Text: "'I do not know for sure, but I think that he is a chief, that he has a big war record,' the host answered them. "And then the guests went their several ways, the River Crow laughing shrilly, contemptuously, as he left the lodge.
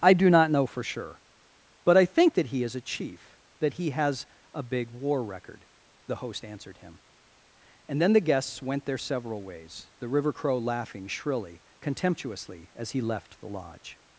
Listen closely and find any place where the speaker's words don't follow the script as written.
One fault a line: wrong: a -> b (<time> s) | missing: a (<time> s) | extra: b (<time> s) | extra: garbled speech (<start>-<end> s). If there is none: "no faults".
wrong: them -> him (6.8 s)